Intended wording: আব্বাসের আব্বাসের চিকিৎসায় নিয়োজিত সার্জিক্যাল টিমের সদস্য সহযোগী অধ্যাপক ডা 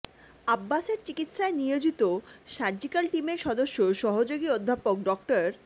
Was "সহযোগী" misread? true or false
false